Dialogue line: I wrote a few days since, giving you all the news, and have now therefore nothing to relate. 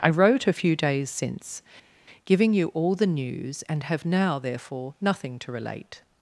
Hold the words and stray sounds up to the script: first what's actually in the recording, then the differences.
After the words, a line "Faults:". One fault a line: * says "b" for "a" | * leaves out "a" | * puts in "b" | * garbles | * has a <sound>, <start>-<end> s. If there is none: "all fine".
I wrote a few days since, giving you all the news, and have now therefore nothing to relate.
Faults:
all fine